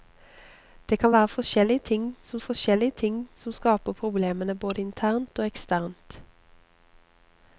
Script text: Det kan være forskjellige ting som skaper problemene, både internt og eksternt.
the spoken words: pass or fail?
fail